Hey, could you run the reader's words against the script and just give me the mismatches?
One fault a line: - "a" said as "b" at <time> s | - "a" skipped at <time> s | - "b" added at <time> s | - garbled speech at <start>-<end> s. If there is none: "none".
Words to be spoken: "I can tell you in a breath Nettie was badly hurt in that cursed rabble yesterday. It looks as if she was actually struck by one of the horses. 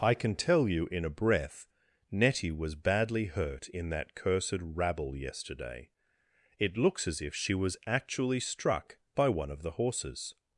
none